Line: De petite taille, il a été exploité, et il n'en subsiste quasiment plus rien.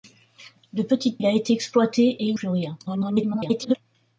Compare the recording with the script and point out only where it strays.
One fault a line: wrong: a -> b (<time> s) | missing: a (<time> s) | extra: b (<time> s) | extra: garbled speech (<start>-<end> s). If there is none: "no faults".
missing: taille (1.2 s)
missing: n'en subsiste quasiment (2.4 s)
extra: garbled speech (2.9-3.8 s)